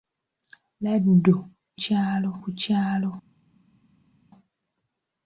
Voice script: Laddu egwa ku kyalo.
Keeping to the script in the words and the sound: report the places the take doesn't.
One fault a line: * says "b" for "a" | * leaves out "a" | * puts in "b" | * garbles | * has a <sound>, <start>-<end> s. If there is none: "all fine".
* says "kyalo" for "egwa"